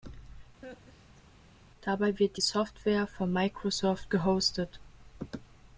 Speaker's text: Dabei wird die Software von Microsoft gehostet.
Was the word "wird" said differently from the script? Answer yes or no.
no